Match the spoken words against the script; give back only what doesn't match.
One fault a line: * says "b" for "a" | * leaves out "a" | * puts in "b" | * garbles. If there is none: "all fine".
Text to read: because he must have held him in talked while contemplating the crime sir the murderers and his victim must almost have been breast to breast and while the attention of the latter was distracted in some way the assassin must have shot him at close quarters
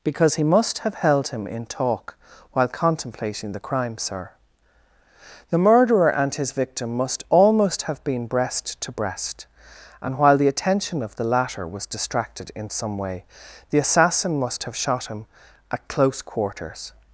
* says "talk" for "talked"
* says "murderer" for "murderers"